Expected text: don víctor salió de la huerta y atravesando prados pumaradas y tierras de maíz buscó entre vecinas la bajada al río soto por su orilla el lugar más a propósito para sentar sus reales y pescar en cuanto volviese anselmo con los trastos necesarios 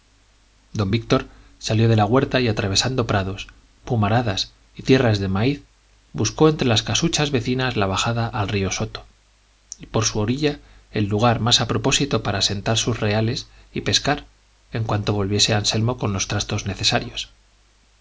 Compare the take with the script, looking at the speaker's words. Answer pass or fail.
fail